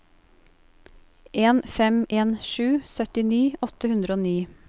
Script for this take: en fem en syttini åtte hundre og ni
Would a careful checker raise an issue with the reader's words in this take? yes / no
yes